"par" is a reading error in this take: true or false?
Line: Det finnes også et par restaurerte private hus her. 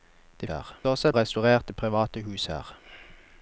true